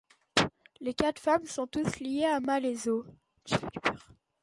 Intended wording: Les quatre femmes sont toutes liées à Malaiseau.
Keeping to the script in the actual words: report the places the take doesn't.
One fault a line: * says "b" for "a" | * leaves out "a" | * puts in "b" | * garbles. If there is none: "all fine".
all fine